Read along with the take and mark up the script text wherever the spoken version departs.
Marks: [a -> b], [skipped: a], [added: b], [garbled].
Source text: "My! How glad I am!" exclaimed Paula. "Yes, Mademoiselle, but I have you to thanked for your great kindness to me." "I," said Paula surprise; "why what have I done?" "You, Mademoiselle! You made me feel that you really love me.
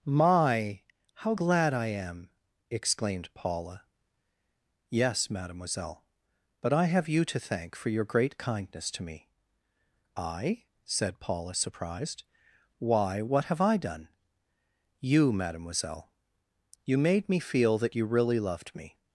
"My! How glad I am!" exclaimed Paula. "Yes, Mademoiselle, but I have you to [thanked -> thank] for your great kindness to me." "I," said Paula [surprise; -> surprised] "why what have I done?" "You, Mademoiselle! You made me feel that you really [love -> loved] me.